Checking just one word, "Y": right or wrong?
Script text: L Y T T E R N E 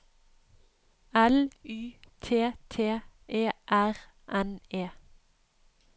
right